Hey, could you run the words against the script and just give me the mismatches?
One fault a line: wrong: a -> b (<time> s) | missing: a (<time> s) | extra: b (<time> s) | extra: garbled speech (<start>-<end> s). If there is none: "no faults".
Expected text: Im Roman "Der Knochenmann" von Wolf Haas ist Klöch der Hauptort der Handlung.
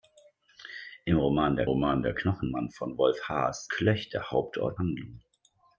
extra: Roman Der (1.6 s)
missing: ist (3.7 s)
missing: der (4.8 s)